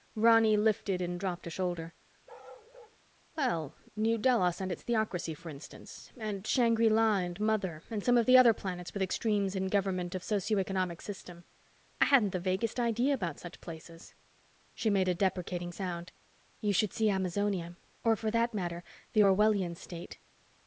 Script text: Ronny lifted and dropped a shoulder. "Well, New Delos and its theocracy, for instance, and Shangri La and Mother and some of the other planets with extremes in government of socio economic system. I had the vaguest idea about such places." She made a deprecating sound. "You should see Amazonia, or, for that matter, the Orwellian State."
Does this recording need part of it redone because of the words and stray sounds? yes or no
yes